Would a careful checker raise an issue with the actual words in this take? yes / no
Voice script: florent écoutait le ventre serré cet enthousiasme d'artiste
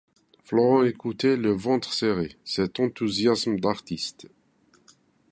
no